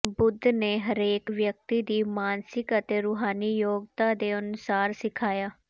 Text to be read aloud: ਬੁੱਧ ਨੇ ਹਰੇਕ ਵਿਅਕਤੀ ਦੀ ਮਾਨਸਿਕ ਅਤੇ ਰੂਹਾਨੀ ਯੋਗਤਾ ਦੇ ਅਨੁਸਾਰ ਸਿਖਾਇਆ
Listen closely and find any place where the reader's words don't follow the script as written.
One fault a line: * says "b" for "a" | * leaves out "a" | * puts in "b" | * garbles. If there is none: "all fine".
all fine